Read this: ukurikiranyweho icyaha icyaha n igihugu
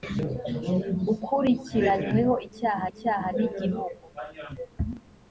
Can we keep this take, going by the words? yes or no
yes